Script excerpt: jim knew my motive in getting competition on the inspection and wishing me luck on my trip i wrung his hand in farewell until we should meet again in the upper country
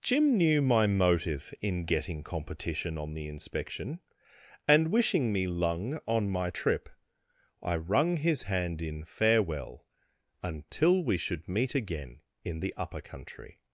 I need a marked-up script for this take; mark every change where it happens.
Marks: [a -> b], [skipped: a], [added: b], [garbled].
jim knew my motive in getting competition on the inspection and wishing me [luck -> lung] on my trip i wrung his hand in farewell until we should meet again in the upper country